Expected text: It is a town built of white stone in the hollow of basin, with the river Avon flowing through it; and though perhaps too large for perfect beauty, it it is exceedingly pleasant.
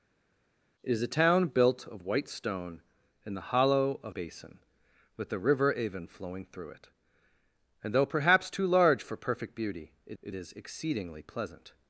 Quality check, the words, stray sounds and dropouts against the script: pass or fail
pass